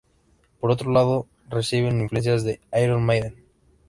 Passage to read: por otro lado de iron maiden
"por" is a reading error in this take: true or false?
false